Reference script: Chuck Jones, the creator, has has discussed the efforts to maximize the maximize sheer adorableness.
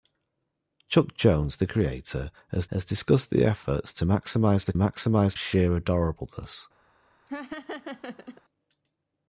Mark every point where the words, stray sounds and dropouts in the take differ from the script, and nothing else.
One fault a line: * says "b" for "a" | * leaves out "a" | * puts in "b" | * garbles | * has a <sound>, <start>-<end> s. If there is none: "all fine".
* has a laugh, 7.3-8.4 s